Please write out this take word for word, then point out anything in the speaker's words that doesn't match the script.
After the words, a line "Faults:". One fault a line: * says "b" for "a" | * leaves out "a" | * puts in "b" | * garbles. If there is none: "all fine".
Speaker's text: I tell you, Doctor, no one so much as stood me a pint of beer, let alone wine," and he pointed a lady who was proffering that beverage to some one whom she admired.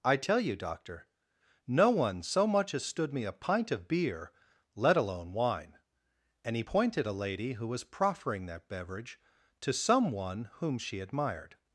I tell you, Doctor, no one so much as stood me a pint of beer, let alone wine," and he pointed a lady who was proffering that beverage to some one whom she admired.
Faults:
all fine